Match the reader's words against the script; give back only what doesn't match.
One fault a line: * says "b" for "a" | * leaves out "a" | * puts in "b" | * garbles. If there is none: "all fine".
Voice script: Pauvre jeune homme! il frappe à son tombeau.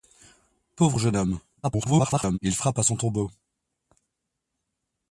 * garbles